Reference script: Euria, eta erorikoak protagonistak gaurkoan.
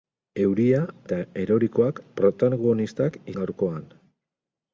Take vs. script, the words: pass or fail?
pass